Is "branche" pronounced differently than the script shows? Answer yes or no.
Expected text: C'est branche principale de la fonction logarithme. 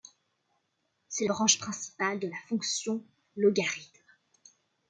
no